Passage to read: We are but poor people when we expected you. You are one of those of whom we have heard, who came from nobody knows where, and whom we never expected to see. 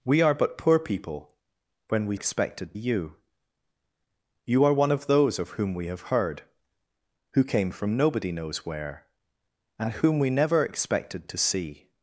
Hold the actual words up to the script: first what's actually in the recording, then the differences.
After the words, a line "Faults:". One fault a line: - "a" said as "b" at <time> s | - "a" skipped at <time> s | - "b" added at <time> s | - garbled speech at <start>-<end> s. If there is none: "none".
We are but poor people when we expected you. You are one of those of whom we have heard, who came from nobody knows where, and whom we never expected to see.
Faults:
none